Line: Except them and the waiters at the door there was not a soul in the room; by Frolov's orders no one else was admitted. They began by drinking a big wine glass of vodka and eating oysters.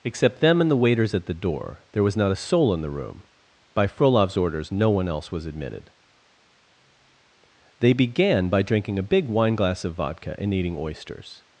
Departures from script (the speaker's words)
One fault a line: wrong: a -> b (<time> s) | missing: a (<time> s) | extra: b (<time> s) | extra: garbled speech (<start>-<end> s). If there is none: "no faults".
no faults